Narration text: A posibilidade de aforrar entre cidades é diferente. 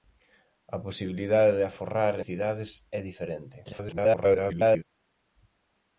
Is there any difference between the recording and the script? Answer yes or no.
yes